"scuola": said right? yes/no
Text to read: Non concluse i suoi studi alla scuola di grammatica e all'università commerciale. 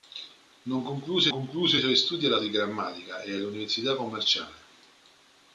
no